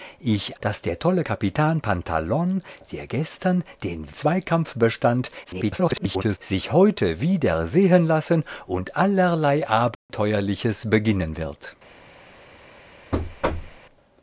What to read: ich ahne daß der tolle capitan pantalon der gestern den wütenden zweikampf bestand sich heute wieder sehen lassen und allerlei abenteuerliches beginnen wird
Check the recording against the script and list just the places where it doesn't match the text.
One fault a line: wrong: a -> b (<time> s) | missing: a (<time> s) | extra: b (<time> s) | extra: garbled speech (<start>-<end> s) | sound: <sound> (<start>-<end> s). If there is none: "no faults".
missing: ahne (0.6 s)
missing: wütenden (4.1 s)
extra: garbled speech (5.4-6.4 s)
sound: dropout (9.9-10.1 s)
sound: thud (13.1-13.8 s)